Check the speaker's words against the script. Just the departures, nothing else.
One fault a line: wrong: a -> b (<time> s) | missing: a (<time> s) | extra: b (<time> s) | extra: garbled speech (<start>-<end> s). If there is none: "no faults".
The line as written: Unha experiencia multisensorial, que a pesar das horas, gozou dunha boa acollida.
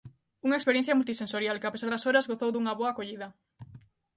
no faults